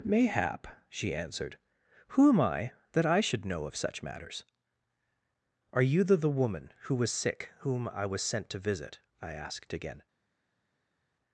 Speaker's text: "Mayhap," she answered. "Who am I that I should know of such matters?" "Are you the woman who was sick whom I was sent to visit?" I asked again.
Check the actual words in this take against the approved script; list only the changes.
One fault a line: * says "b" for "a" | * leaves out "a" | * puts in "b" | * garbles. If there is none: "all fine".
* puts in "the"